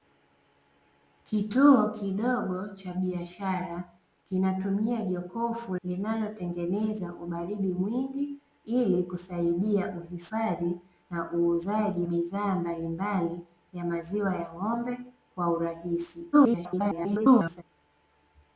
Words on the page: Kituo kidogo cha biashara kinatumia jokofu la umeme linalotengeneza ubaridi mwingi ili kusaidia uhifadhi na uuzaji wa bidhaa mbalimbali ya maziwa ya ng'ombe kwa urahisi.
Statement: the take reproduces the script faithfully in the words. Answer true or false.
false